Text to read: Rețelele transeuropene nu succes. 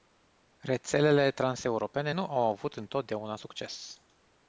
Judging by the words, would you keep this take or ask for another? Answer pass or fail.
fail